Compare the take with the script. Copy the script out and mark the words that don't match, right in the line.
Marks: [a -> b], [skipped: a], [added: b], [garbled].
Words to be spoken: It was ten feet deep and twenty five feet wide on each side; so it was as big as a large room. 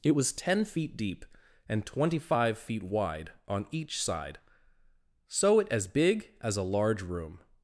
It was ten feet deep and twenty five feet wide on each side; so it [skipped: was] as big as a large room.